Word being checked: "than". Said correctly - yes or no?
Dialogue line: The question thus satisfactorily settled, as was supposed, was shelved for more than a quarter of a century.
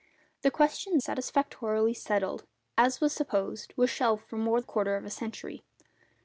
no